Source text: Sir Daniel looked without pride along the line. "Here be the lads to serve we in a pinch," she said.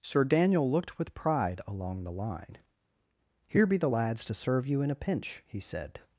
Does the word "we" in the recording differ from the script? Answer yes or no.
yes